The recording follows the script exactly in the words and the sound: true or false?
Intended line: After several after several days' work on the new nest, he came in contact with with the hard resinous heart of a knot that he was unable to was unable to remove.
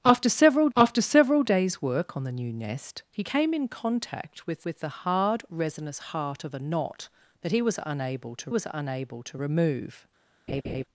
false